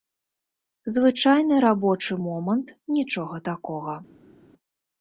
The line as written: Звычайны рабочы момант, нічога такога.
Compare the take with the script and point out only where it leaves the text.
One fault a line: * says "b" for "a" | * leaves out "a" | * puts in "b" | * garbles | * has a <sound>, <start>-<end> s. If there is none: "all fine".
all fine